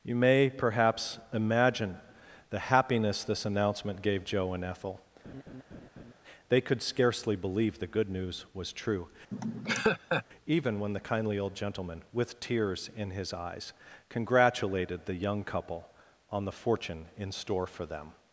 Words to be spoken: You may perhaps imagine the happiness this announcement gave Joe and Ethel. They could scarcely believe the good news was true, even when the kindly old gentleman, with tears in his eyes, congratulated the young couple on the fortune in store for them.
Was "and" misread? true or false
false